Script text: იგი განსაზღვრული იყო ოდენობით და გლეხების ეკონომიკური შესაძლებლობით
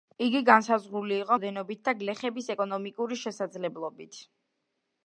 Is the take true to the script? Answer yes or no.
yes